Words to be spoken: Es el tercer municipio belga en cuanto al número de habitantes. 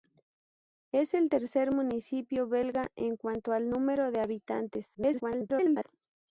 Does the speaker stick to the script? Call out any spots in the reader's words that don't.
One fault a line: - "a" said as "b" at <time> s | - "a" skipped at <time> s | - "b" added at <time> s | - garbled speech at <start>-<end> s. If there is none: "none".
- garbled speech at 4.9-5.8 s